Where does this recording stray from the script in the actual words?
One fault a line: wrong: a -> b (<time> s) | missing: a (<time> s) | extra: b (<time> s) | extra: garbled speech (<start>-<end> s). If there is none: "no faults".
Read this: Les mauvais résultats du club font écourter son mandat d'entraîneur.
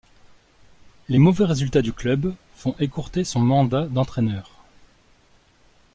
no faults